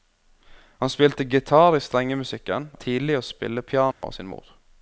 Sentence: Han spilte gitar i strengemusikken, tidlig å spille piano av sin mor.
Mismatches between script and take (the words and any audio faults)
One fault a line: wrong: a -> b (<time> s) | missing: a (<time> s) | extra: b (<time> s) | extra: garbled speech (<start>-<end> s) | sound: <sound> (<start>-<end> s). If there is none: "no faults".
sound: dropout (3.9-4.0 s)